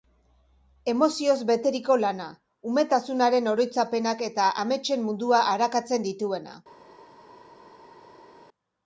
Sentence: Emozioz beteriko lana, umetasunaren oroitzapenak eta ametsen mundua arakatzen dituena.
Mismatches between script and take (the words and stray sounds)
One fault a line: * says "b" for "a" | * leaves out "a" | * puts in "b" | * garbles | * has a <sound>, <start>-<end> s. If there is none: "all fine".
all fine